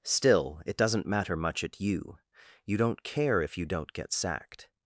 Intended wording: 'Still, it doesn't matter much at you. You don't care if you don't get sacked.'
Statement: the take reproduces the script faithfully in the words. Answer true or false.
true